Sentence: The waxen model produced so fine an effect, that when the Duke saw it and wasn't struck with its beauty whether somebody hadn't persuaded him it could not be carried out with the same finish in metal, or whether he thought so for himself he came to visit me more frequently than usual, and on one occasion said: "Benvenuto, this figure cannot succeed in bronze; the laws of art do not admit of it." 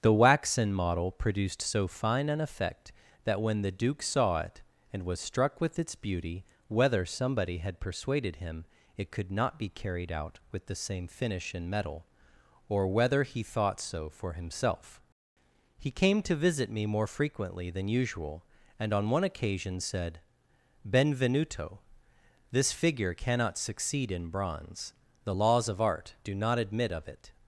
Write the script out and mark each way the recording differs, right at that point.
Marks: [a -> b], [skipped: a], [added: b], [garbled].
The waxen model produced so fine an effect, that when the Duke saw it and [wasn't -> was] struck with its beauty whether somebody [hadn't -> had] persuaded him it could not be carried out with the same finish in metal, or whether he thought so for himself he came to visit me more frequently than usual, and on one occasion said: "Benvenuto, this figure cannot succeed in bronze; the laws of art do not admit of it."